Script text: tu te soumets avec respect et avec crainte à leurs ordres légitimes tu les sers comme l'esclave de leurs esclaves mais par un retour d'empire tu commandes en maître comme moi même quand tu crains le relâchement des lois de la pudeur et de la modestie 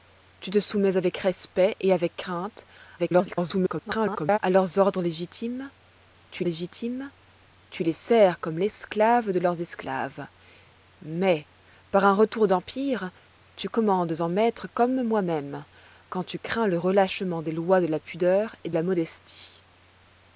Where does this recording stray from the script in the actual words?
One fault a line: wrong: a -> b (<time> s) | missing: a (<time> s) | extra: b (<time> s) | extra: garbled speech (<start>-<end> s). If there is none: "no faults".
extra: garbled speech (3.0-4.4 s)
extra: légitimes tu (6.4 s)
missing: de (18.7 s)